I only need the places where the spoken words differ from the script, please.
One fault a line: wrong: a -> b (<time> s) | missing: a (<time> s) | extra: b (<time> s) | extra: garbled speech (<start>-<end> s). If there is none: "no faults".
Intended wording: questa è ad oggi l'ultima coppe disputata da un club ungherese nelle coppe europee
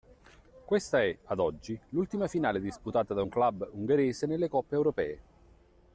wrong: coppe -> finale (2.3 s)